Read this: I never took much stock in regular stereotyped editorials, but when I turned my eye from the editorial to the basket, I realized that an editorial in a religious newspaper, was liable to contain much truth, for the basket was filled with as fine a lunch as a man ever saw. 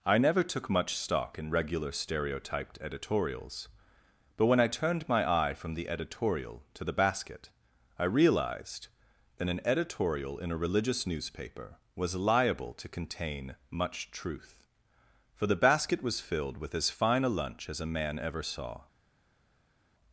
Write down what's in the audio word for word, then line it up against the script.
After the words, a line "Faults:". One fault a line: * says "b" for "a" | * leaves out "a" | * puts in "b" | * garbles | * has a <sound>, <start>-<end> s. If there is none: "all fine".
I never took much stock in regular stereotyped editorials, but when I turned my eye from the editorial to the basket, I realized that an editorial in a religious newspaper, was liable to contain much truth, for the basket was filled with as fine a lunch as a man ever saw.
Faults:
all fine